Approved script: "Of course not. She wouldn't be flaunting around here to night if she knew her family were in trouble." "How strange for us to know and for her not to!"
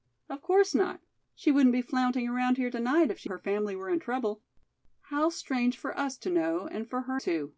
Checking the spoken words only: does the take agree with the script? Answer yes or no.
no